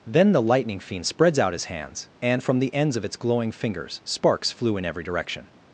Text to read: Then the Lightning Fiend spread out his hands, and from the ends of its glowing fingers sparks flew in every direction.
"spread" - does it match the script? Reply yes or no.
no